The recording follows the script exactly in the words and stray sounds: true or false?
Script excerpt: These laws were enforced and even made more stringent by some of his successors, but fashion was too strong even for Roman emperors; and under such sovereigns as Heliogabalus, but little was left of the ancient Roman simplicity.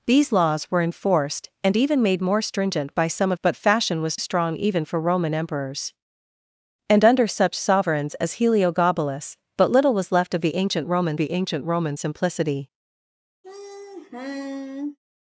false